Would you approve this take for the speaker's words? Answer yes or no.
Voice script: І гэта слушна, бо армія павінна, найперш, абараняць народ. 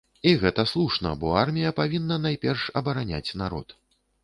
yes